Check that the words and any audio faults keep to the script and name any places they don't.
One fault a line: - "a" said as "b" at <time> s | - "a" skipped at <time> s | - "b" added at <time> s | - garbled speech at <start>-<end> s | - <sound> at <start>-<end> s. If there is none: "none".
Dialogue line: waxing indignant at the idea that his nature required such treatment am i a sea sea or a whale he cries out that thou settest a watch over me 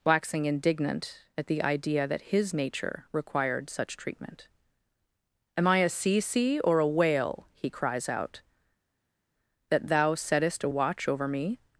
none